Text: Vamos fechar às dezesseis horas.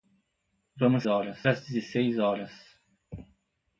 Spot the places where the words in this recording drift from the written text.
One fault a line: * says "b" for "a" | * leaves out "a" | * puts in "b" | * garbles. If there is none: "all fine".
* says "horas" for "fechar"